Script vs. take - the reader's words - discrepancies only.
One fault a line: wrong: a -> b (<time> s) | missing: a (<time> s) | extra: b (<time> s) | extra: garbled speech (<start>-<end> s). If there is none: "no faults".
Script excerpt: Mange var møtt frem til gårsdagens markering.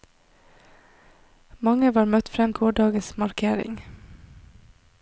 missing: til (2.5 s)